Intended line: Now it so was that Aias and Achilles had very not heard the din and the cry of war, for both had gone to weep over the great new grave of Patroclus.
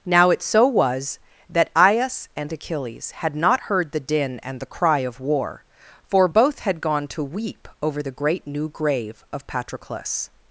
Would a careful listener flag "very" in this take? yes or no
yes